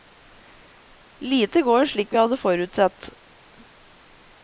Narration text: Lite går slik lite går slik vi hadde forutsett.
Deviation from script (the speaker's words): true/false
true